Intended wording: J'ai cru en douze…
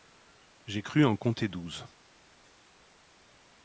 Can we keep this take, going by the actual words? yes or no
no